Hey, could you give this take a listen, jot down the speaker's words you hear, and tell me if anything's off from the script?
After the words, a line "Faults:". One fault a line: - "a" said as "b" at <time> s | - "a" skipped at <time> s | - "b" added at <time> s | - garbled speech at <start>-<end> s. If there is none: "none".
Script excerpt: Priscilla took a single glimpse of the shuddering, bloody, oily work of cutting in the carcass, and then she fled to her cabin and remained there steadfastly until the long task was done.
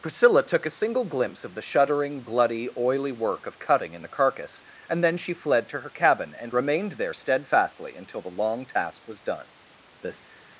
Priscilla took a single glimpse of the shuddering, bloody, oily work of cutting in the carcass, and then she fled to her cabin and remained there steadfastly until the long task was done. The
Faults:
- "The" added at 10.0 s